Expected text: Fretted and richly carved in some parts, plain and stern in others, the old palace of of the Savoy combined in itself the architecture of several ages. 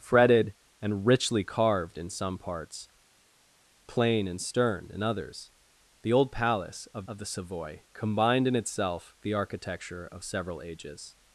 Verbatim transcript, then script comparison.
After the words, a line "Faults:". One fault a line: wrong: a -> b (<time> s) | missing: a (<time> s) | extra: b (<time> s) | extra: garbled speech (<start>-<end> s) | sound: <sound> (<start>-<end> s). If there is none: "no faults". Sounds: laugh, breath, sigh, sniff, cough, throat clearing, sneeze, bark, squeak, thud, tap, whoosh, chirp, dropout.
Fretted and richly carved in some parts, plain and stern in others, the old palace of of the Savoy combined in itself the architecture of several ages.
Faults:
no faults